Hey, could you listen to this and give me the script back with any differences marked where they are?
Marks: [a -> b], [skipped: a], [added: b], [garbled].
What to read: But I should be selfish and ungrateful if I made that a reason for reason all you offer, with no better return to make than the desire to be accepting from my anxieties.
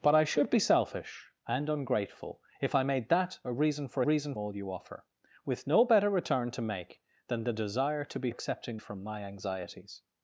But I should be selfish and ungrateful if I made that a reason for reason all you offer, with no better return to make than the desire to be accepting from my anxieties.